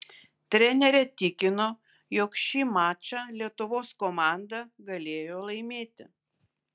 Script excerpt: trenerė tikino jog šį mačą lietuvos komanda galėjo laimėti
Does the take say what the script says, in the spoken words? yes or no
yes